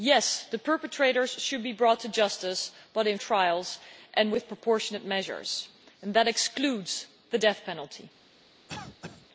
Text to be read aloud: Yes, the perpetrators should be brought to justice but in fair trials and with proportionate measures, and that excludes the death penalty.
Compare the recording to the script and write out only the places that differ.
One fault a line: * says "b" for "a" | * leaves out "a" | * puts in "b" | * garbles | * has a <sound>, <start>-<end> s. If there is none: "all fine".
* leaves out "fair"
* has a cough, 8.7-9.3 s